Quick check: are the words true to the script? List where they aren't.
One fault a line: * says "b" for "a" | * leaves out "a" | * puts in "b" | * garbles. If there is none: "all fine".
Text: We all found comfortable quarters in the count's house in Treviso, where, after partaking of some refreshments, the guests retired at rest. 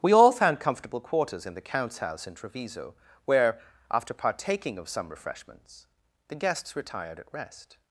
all fine